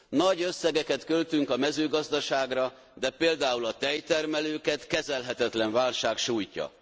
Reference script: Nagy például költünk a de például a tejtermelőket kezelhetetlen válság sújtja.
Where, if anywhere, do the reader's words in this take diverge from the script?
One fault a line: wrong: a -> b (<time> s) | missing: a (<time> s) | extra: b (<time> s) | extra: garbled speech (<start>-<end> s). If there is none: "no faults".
wrong: például -> összegeket (0.4 s)
extra: mezőgazdaságra (1.6 s)